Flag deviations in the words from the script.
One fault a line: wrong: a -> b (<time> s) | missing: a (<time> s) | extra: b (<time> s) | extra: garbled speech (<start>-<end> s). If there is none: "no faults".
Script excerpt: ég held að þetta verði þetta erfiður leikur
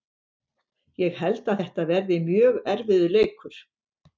wrong: þetta -> mjög (2.3 s)